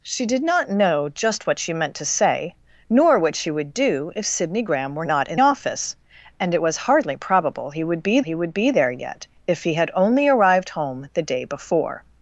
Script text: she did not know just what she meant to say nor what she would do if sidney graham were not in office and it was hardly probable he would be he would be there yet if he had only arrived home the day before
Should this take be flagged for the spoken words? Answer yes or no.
no